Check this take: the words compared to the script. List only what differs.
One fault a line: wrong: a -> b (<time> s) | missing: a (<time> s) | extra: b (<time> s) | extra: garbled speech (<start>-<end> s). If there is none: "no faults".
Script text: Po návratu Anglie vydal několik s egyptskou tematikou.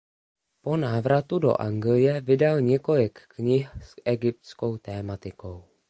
extra: do (1.4 s)
extra: knih (3.3 s)